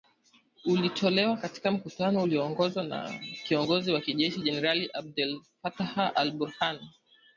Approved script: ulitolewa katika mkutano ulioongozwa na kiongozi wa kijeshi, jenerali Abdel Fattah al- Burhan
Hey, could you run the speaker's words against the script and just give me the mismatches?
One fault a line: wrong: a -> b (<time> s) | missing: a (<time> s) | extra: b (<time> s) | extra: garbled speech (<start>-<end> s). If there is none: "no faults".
no faults